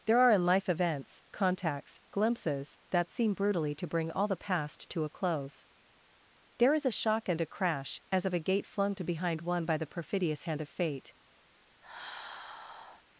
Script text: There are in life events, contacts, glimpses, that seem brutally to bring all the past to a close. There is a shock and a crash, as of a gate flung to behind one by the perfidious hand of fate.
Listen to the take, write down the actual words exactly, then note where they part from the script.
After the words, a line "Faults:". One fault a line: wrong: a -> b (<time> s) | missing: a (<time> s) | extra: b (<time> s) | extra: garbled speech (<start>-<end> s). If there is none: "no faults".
There are in life events, contacts, glimpses, that seem brutally to bring all the past to a close. There is a shock and a crash, as of a gate flung to behind one by the perfidious hand of fate.
Faults:
no faults